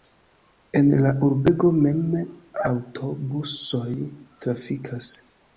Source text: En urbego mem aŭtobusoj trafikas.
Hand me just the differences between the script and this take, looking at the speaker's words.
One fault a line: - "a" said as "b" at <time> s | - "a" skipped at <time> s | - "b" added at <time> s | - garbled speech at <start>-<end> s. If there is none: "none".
- "la" added at 1.0 s